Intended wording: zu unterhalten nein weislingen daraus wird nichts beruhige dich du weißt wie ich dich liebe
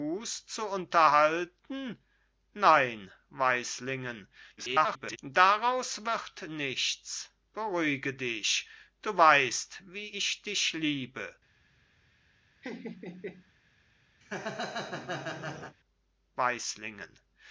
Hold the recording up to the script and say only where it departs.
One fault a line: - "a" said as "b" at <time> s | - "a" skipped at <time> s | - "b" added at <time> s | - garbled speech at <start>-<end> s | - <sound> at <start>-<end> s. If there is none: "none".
- garbled speech at 4.6-5.2 s
- laugh at 12.6-13.5 s
- laugh at 14.2-15.8 s